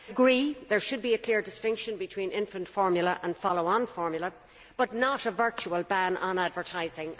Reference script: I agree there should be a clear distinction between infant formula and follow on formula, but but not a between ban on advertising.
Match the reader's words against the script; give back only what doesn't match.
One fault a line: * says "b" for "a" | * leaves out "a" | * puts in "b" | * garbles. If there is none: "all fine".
* leaves out "but"
* says "virtual" for "between"